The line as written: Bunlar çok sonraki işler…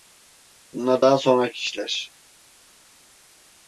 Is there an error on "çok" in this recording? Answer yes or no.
yes